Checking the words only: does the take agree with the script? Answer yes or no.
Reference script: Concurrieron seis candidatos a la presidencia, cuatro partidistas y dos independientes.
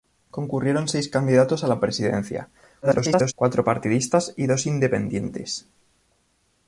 no